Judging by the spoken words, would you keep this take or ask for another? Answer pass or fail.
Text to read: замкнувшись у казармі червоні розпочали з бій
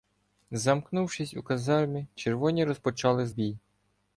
pass